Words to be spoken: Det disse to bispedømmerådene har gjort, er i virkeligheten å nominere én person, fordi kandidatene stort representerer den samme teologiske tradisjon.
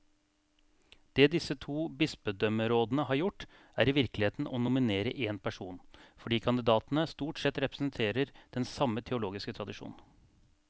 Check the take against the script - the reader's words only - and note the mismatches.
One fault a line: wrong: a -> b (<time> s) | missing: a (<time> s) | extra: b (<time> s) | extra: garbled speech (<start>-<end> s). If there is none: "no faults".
extra: sett (7.4 s)